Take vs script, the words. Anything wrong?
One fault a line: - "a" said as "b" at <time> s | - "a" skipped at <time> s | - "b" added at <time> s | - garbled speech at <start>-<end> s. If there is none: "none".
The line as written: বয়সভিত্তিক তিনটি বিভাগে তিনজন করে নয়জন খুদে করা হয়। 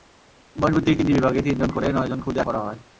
none